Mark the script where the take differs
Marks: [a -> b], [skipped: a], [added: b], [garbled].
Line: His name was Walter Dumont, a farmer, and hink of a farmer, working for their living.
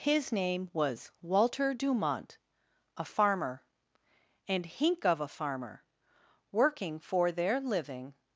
His name was Walter Dumont, a farmer, and hink of a farmer, working for their living.